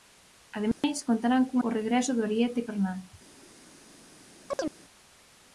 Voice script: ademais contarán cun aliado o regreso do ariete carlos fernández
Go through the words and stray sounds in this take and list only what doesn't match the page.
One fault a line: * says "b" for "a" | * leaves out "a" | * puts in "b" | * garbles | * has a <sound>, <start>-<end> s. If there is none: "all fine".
* has a dropout, 0.7-0.8 s
* leaves out "aliado"
* leaves out "carlos"
* has a chirp, 4.5-4.8 s